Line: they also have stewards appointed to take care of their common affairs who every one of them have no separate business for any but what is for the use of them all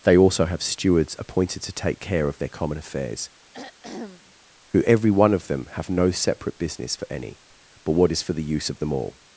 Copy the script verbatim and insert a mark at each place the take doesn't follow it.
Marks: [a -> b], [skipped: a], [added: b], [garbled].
they also have stewards appointed to take care of their common affairs who every one of them have no separate business for any but what is for the use of them all